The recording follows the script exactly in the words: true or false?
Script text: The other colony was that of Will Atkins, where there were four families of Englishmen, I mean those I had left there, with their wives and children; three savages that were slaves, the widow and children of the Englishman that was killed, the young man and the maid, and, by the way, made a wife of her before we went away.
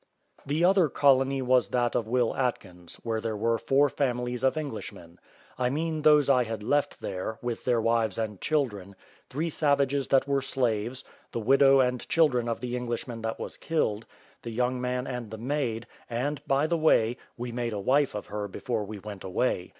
false